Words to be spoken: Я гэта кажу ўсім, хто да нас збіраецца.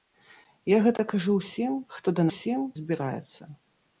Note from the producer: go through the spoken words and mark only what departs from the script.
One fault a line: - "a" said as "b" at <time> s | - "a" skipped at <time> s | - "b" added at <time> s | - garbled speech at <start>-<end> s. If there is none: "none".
- "нас" said as "ўсім" at 2.3 s